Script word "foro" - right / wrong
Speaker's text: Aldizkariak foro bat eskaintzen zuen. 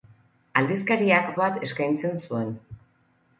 wrong